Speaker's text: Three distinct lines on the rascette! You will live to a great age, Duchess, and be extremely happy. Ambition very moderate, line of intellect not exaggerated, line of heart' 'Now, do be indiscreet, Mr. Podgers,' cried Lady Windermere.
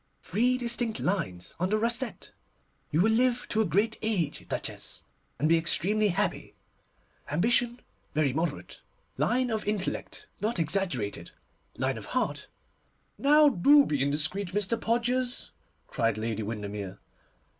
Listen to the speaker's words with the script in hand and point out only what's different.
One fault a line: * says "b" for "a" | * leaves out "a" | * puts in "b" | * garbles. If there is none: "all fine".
all fine